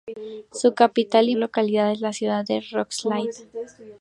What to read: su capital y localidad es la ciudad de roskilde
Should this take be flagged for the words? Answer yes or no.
no